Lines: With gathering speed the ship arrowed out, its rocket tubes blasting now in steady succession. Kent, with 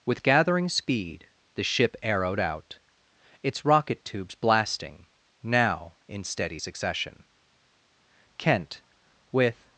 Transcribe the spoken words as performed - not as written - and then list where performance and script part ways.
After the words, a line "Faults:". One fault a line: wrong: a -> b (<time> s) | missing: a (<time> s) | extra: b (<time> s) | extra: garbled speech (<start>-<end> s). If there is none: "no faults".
With gathering speed the ship arrowed out, its rocket tubes blasting now in steady succession. Kent, with
Faults:
no faults